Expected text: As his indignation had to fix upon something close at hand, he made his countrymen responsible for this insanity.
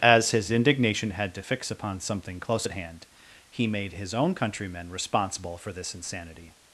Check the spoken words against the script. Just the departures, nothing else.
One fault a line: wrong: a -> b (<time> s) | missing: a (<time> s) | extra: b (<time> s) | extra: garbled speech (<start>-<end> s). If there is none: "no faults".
extra: own (4.1 s)